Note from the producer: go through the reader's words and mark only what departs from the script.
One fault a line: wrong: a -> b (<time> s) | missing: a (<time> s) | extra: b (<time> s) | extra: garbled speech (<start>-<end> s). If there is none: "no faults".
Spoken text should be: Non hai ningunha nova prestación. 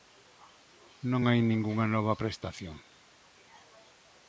no faults